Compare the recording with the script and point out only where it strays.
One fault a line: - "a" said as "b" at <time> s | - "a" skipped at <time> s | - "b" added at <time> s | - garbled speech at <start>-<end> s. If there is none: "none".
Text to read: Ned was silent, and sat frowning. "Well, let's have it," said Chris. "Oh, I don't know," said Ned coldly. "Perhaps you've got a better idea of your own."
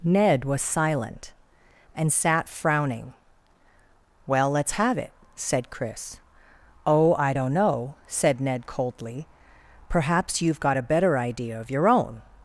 none